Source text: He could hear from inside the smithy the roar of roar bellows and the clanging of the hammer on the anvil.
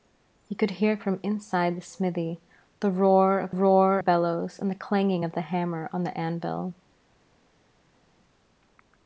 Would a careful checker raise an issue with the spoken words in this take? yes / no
no